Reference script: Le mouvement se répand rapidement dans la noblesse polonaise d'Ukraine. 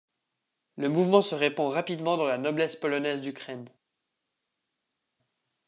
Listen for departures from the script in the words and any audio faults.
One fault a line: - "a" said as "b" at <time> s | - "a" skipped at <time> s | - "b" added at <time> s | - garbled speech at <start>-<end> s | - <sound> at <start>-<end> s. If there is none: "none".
none